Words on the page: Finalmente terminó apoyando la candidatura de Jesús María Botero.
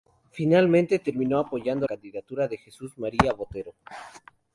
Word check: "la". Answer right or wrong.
wrong